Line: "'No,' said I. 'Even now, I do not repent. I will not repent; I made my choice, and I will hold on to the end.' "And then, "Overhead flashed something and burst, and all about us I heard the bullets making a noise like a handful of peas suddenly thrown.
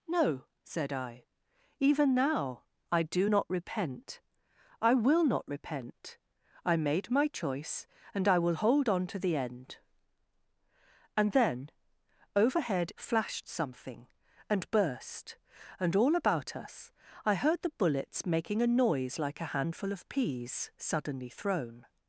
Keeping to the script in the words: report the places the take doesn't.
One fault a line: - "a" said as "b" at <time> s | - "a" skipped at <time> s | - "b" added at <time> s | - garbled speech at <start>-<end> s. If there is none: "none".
none